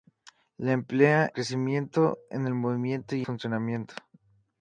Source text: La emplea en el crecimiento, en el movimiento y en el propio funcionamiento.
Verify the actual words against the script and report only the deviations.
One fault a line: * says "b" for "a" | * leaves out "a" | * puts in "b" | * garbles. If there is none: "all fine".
* leaves out "en el"
* leaves out "en el propio"